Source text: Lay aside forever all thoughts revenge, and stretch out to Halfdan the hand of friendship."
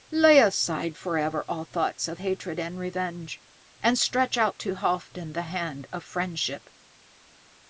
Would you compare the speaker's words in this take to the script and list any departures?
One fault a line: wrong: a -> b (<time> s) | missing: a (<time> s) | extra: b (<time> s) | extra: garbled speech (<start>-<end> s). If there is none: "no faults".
extra: of hatred and (2.1 s)